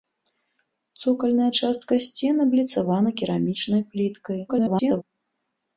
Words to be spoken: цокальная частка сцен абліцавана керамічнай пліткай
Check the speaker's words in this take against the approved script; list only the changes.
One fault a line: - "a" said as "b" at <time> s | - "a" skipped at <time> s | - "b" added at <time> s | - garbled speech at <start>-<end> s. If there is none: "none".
- garbled speech at 4.5-5.0 s